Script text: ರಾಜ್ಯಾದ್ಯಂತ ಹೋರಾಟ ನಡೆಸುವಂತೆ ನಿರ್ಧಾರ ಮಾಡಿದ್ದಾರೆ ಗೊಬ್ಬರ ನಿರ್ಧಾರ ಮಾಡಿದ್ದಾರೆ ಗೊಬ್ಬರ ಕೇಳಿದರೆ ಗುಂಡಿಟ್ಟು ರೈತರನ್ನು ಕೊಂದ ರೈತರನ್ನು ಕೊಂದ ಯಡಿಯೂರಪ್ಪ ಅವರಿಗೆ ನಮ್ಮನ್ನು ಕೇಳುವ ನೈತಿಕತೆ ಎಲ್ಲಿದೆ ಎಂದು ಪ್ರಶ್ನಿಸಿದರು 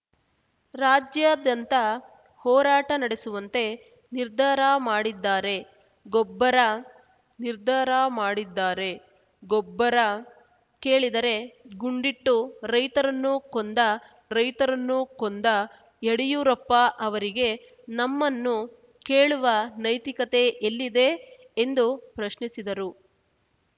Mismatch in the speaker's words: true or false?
false